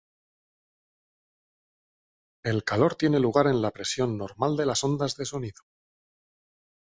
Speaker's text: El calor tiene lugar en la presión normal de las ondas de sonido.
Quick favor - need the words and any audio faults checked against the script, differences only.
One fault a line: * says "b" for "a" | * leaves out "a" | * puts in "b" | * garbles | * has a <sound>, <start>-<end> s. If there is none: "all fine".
all fine